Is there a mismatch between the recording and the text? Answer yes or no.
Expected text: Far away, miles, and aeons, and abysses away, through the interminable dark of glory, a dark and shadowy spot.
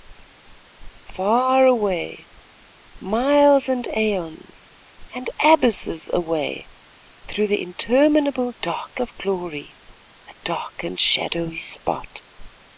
no